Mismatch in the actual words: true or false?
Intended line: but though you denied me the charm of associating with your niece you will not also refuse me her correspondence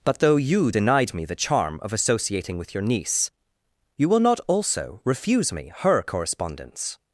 false